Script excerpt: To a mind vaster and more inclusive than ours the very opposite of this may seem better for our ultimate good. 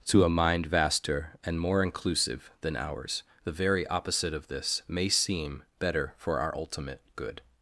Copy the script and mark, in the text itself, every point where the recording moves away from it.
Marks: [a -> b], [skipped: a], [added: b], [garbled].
To a mind vaster and more inclusive than ours the very opposite of this may seem better for our ultimate good.